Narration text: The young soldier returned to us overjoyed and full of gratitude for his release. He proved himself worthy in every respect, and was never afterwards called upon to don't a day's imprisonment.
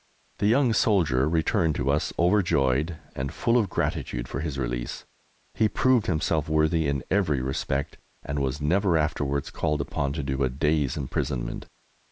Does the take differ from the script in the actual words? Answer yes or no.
yes